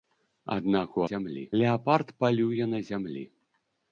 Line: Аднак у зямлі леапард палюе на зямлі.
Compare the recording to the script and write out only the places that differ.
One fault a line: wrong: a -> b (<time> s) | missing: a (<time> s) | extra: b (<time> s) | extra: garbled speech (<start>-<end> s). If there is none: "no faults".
no faults